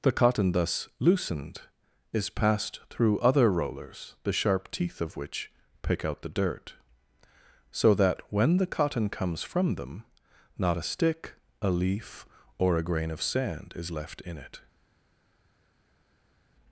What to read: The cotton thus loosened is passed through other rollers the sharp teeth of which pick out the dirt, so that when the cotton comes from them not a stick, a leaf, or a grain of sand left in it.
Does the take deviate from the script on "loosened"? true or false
false